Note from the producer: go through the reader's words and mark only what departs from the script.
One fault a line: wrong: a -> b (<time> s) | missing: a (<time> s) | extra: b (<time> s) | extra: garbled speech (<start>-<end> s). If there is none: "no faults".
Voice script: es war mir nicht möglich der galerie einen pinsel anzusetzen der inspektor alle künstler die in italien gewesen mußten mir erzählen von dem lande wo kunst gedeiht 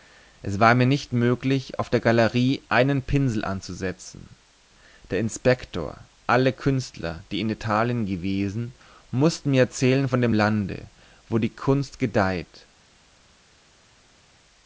extra: auf (1.8 s)
extra: die (11.4 s)